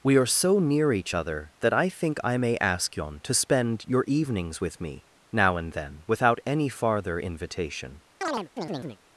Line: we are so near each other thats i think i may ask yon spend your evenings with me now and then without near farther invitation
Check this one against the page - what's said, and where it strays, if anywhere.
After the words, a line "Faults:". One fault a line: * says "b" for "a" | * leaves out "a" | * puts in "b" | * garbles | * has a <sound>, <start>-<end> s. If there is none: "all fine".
we are so near each other that i think i may ask yon to spend your evenings with me now and then without any farther invitation
Faults:
* says "that" for "thats"
* puts in "to"
* says "any" for "near"
* has a chirp, 8.2-9.0 s